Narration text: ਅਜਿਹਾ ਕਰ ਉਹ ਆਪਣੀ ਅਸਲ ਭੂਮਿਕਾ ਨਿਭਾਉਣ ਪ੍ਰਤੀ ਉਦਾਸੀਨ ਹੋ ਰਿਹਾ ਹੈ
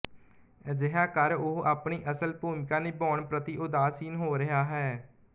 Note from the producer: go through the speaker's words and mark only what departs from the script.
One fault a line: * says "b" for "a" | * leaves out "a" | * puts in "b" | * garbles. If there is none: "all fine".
all fine